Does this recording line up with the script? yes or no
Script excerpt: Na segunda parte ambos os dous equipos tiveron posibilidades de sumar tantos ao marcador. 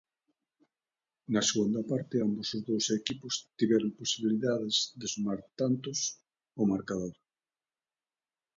yes